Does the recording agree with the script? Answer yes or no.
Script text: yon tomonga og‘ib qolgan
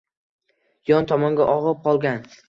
yes